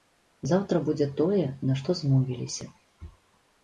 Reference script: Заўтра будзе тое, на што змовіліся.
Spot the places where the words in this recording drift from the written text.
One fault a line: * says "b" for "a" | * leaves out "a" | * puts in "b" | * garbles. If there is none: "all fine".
all fine